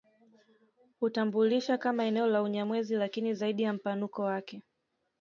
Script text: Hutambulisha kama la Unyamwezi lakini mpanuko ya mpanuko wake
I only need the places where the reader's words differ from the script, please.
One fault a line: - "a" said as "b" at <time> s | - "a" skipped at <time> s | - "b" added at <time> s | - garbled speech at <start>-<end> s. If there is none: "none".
- "eneo" added at 2.0 s
- "mpanuko" said as "zaidi" at 3.3 s